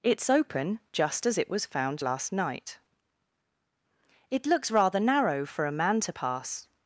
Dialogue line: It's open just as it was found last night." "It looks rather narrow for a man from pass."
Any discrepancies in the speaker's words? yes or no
yes